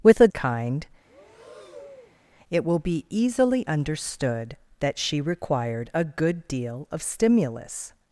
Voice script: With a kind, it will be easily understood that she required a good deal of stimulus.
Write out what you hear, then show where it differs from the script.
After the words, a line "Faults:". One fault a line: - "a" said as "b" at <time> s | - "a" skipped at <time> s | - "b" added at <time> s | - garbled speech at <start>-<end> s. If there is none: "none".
With a kind, it will be easily understood that she required a good deal of stimulus.
Faults:
none